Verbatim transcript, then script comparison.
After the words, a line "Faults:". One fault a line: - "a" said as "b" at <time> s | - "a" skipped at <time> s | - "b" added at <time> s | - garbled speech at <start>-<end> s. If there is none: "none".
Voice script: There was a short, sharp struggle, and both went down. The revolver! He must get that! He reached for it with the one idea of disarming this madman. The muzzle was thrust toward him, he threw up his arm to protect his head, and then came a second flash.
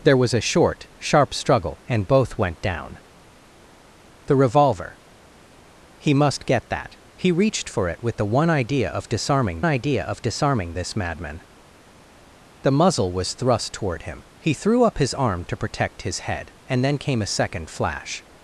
There was a short, sharp struggle, and both went down. The revolver! He must get that! He reached for it with the one idea of disarming idea of disarming this madman. The muzzle was thrust toward him, he threw up his arm to protect his head, and then came a second flash.
Faults:
- "idea of disarming" added at 9.6 s